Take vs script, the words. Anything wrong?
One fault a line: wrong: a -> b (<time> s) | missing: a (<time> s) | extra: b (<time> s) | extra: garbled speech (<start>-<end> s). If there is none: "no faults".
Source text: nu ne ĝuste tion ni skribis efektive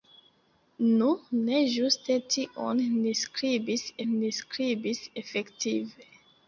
extra: ni skribis (4.1 s)